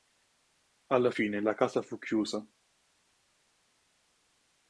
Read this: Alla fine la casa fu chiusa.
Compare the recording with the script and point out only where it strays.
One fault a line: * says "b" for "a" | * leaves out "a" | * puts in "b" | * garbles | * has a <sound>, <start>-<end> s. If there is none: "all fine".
all fine